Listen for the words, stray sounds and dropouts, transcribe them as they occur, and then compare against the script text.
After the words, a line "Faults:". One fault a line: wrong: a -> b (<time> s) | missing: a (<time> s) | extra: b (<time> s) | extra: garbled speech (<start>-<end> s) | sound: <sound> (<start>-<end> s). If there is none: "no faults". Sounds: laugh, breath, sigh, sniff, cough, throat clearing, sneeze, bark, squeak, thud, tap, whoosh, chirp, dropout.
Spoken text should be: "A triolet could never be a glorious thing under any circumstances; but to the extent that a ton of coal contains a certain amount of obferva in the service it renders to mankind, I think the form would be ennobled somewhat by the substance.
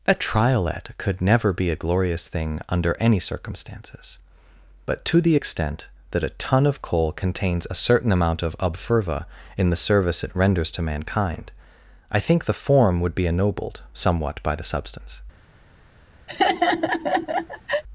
"A triolet could never be a glorious thing under any circumstances; but to the extent that a ton of coal contains a certain amount of obferva in the service it renders to mankind, I think the form would be ennobled somewhat by the substance.
Faults:
sound: laugh (16.3-17.8 s)